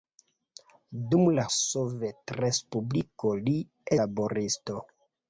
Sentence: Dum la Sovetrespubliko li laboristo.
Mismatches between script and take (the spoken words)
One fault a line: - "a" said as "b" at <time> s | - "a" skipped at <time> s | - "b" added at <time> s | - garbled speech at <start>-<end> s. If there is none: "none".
none